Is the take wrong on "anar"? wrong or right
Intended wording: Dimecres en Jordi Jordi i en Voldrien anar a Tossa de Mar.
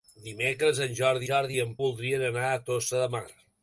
right